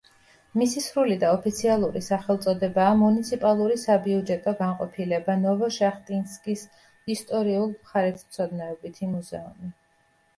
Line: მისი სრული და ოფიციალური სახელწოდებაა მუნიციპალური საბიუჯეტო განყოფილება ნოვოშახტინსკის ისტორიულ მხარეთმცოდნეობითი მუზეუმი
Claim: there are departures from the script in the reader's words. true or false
false